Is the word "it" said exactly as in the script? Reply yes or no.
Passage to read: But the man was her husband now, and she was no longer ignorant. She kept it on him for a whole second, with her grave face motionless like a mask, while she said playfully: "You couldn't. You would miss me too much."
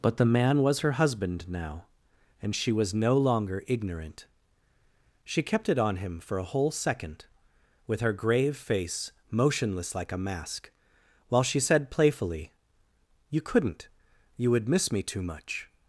yes